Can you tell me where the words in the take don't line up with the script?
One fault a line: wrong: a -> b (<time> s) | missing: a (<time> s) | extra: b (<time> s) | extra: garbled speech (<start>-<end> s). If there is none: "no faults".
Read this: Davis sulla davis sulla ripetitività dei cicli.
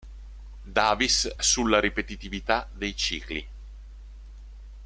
missing: davis sulla (1.8 s)